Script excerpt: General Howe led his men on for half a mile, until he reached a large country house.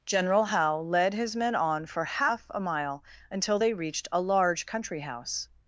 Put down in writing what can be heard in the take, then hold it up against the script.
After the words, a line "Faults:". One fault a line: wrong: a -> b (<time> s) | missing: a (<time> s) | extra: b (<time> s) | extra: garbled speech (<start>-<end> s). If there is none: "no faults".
General Howe led his men on for half a mile, until they reached a large country house.
Faults:
wrong: he -> they (3.6 s)